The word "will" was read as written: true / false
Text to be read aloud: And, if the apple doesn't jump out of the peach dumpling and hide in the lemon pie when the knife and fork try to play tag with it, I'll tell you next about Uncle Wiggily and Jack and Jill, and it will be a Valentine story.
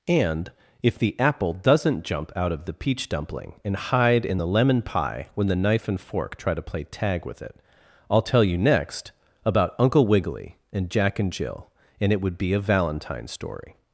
false